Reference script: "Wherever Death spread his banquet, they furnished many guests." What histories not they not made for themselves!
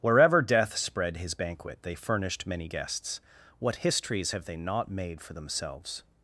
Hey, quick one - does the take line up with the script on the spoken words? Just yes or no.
no